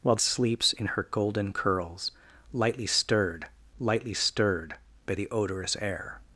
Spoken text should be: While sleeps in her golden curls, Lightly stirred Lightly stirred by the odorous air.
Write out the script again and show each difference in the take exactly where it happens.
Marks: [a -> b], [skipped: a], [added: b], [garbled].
While sleeps in her golden curls, Lightly stirred Lightly stirred by the odorous air.